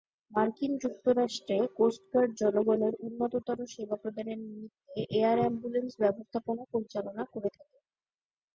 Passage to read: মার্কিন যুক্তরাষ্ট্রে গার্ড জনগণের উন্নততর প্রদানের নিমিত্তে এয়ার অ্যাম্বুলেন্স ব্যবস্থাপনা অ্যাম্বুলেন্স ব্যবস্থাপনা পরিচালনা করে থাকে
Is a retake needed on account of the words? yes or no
yes